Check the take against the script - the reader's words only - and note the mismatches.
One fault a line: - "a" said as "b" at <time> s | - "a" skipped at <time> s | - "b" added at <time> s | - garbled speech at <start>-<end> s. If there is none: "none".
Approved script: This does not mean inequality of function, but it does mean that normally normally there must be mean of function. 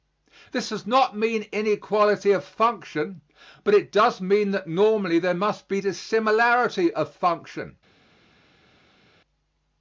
- "normally" skipped at 5.2 s
- "mean" said as "dissimilarity" at 5.8 s